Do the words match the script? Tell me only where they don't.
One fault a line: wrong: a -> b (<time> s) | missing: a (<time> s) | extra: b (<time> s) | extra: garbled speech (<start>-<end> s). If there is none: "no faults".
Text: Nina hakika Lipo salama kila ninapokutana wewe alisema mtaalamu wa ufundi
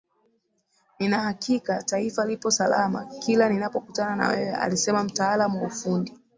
extra: Taifa (1.8 s)
extra: na (4.2 s)